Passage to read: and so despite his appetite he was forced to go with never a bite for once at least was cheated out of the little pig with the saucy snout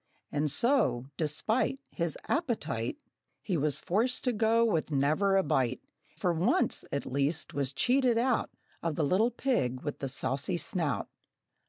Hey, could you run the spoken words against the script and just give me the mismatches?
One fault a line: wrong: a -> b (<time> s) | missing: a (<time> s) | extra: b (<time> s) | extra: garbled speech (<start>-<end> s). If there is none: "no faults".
no faults